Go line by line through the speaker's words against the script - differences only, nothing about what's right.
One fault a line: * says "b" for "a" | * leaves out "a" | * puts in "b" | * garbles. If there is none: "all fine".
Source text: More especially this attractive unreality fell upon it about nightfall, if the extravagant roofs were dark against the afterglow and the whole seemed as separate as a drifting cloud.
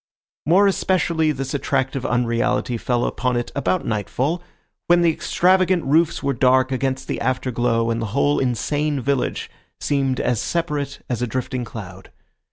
* says "when" for "if"
* puts in "insane village"